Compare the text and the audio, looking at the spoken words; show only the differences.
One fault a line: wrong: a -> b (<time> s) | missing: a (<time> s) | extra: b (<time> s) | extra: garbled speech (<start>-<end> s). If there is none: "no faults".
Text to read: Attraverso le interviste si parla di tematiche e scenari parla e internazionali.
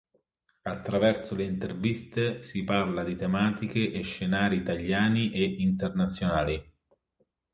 wrong: parla -> italiani (4.5 s)